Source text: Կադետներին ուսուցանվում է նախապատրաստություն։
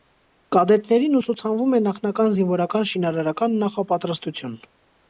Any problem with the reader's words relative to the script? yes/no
yes